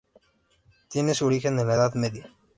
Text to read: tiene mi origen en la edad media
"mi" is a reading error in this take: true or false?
true